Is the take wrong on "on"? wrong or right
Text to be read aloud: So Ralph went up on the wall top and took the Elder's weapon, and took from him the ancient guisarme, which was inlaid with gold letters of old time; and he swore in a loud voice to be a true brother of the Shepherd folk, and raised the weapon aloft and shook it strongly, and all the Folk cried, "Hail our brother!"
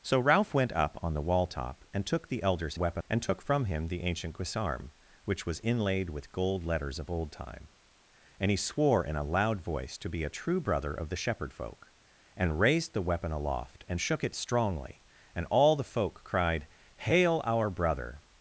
right